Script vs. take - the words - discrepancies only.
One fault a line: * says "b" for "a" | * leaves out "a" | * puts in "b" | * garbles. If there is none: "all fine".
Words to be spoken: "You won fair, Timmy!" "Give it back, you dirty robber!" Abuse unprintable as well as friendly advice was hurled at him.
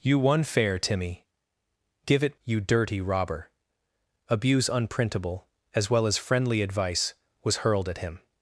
* leaves out "back"